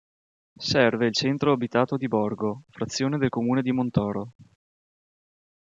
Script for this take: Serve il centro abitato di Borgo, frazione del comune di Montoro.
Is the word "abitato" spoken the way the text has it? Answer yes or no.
yes